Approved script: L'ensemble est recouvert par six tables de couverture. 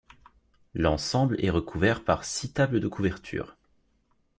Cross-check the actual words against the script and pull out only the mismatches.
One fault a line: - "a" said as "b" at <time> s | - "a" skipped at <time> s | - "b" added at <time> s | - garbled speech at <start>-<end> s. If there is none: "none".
none